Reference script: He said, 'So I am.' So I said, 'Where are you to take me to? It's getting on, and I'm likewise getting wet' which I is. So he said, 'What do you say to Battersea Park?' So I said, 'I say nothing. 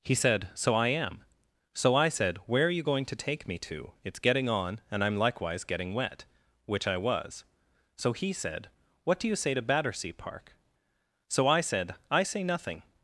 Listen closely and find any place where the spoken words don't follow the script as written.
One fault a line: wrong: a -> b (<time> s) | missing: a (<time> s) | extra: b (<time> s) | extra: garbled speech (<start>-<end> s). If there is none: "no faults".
extra: going (2.8 s)
wrong: is -> was (7.0 s)